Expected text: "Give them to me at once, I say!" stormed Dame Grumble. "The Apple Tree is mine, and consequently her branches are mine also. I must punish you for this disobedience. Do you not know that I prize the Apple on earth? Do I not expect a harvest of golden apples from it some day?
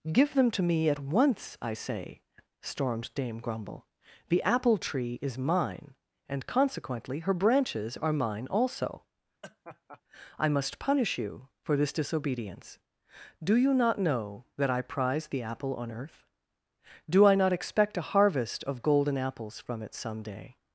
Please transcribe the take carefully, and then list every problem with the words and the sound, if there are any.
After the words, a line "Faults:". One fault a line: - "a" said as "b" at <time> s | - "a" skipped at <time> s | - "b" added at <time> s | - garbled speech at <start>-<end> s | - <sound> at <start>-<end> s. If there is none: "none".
"Give them to me at once, I say!" stormed Dame Grumble. "The Apple Tree is mine, and consequently her branches are mine also. I must punish you for this disobedience. Do you not know that I prize the Apple on earth? Do I not expect a harvest of golden apples from it some day?
Faults:
- laugh at 9.4-10.0 s